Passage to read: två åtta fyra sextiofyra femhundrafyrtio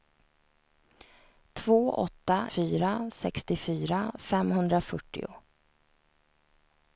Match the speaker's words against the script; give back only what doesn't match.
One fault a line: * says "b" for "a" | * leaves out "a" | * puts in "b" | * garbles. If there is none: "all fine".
all fine